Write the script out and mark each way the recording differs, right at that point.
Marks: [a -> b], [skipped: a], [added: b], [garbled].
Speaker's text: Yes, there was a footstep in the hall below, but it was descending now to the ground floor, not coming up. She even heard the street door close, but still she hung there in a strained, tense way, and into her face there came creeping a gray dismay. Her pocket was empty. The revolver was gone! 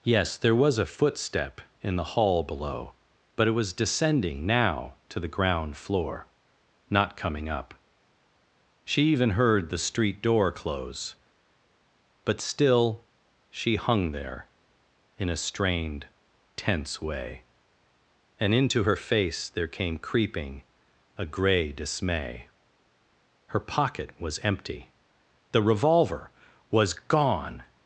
Yes, there was a footstep in the hall below, but it was descending now to the ground floor, not coming up. She even heard the street door close, but still she hung there in a strained, tense way, and into her face there came creeping a gray dismay. Her pocket was empty. The revolver was gone!